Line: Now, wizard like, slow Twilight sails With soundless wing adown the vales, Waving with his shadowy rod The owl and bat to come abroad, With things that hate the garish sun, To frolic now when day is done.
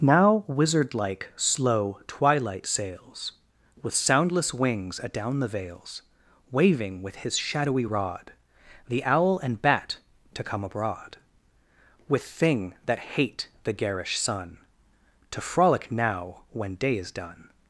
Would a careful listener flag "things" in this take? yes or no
yes